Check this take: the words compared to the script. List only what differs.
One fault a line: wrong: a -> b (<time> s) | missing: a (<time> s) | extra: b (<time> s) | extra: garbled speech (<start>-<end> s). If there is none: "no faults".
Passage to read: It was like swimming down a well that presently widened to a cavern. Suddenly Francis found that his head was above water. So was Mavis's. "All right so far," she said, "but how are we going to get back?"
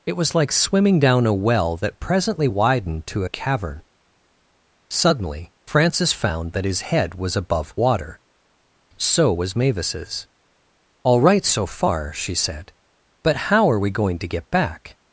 no faults